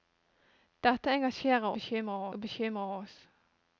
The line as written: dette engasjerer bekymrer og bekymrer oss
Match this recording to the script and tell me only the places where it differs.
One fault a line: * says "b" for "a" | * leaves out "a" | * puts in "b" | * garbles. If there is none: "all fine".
all fine